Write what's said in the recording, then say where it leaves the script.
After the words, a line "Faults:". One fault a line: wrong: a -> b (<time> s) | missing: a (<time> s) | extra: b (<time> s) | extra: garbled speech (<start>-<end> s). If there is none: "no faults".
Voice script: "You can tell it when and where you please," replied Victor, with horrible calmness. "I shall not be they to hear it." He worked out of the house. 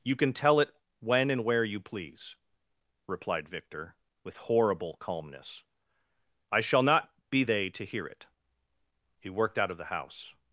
"You can tell it when and where you please," replied Victor, with horrible calmness. "I shall not be they to hear it." He worked out of the house.
Faults:
no faults